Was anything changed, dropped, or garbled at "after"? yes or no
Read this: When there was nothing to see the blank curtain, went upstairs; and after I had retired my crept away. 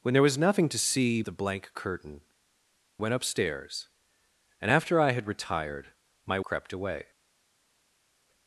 no